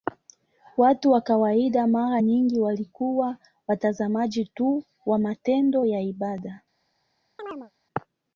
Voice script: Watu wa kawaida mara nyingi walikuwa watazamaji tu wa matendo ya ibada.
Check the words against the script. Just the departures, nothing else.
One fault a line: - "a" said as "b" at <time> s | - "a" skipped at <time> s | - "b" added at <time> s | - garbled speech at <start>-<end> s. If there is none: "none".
none